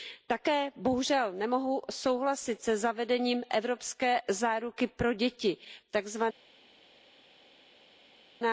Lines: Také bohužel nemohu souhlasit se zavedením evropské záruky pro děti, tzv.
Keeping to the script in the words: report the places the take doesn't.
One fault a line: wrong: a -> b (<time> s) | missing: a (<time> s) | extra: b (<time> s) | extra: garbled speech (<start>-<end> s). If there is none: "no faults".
no faults